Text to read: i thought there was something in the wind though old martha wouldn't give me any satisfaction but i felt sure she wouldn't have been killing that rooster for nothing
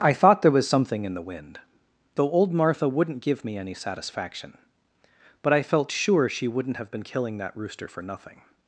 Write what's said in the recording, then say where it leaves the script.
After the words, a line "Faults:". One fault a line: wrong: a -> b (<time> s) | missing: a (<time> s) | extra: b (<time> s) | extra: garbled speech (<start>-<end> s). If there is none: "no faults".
i thought there was something in the wind though old martha wouldn't give me any satisfaction but i felt sure she wouldn't have been killing that rooster for nothing
Faults:
no faults